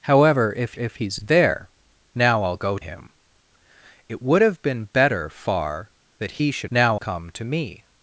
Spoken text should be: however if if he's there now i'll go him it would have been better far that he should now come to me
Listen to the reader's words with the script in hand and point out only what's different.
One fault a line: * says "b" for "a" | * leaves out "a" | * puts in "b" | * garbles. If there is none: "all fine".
all fine